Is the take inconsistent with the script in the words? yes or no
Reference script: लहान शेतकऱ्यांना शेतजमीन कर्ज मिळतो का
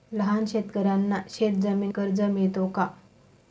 no